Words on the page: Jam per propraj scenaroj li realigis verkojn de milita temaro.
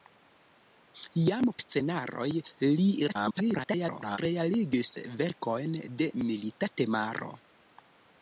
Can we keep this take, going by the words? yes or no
no